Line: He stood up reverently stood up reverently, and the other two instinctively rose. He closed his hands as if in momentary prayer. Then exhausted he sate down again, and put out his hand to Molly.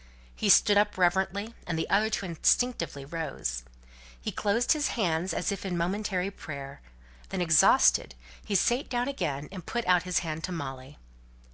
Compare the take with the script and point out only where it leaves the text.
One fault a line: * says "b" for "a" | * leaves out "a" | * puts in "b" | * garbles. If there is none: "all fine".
* leaves out "stood up reverently"